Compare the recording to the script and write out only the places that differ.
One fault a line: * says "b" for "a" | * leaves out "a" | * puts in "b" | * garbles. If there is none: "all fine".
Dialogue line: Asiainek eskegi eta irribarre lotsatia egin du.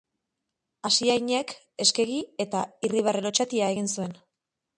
* says "zuen" for "du"